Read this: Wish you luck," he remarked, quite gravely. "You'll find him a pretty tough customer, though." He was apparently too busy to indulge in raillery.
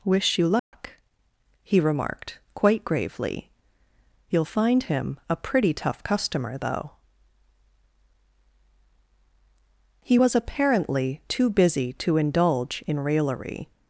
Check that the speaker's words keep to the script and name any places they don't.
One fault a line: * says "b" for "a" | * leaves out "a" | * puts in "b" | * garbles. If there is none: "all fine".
all fine